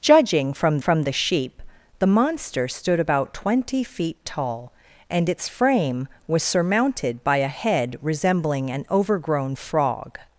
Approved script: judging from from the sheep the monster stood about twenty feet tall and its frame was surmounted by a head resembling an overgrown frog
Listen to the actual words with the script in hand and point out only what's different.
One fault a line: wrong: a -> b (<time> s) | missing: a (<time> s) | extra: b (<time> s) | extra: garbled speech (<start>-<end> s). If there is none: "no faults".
no faults